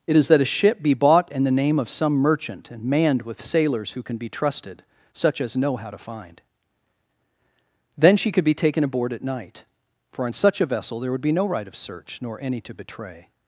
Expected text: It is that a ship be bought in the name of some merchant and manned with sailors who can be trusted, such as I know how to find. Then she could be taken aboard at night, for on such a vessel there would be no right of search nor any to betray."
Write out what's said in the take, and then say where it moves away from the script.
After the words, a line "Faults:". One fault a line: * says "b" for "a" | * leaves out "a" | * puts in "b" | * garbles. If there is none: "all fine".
It is that a ship be bought in the name of some merchant and manned with sailors who can be trusted, such as know how to find. Then she could be taken aboard at night, for on such a vessel there would be no right of search nor any to betray."
Faults:
* leaves out "I"